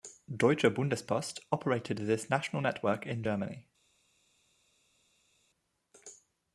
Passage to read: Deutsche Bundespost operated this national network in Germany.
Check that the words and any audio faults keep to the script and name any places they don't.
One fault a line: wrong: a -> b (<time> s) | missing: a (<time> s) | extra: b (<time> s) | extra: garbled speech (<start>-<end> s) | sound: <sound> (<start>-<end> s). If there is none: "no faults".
no faults